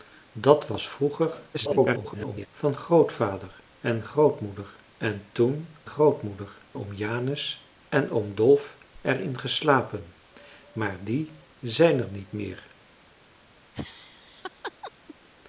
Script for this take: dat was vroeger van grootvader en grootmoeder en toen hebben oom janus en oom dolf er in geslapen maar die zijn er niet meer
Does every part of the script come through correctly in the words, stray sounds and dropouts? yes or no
no